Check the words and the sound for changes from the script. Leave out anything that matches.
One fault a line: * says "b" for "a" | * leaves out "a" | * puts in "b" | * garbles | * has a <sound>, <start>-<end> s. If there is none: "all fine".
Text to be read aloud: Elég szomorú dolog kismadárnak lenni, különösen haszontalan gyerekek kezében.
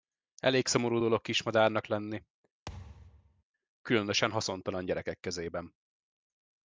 * has a thud, 2.7-3.4 s